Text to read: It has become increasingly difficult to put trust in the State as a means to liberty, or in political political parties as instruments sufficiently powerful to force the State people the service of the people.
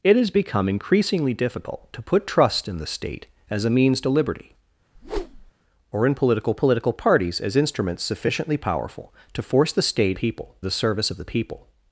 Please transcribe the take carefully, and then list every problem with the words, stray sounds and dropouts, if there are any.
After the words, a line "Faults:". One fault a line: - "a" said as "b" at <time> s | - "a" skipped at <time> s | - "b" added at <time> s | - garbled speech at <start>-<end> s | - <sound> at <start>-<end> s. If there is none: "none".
It has become increasingly difficult to put trust in the State as a means to liberty, or in political political parties as instruments sufficiently powerful to force the State people the service of the people.
Faults:
- whoosh at 4.9-5.5 s